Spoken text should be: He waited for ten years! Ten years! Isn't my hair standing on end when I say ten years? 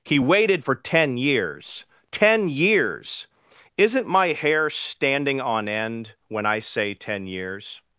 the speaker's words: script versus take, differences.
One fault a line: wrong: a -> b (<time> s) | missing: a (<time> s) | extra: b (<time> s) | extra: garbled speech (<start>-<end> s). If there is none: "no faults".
no faults